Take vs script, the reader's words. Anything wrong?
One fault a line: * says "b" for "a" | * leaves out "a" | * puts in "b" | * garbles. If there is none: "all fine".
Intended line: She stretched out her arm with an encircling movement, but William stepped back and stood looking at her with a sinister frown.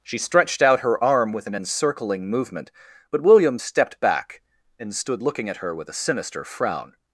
all fine